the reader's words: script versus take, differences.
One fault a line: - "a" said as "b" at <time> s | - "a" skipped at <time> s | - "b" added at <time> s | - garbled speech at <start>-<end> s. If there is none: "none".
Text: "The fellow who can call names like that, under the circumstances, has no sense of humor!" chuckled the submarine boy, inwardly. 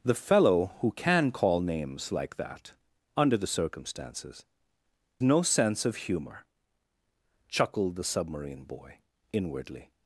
- "has" skipped at 4.5 s